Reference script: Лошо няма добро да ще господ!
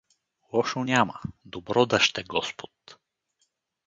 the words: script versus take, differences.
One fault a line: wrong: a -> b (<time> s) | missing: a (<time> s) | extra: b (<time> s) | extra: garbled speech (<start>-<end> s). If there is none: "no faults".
no faults